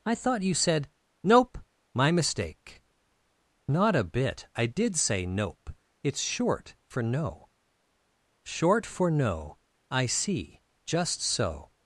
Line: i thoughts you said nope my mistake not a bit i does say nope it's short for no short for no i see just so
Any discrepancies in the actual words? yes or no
yes